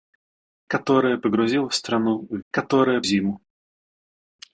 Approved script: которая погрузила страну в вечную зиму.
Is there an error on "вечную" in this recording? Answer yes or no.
yes